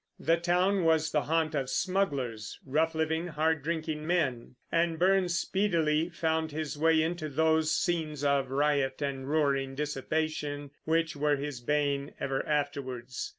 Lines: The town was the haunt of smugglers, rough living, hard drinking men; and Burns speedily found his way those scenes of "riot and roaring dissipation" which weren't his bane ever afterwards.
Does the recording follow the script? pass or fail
fail